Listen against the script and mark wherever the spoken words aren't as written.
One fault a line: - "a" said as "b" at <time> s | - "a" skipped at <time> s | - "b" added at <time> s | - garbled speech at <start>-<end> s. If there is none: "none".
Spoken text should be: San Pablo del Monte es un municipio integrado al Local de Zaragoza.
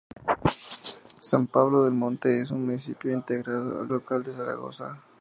none